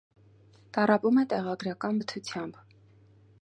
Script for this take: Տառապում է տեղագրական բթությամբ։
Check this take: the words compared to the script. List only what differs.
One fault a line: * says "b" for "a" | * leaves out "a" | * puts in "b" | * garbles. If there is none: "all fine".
all fine